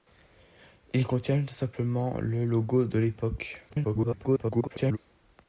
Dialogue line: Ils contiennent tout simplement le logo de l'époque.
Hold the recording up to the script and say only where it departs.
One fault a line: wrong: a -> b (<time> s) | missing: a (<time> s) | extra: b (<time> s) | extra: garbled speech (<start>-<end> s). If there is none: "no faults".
extra: garbled speech (3.7-5.0 s)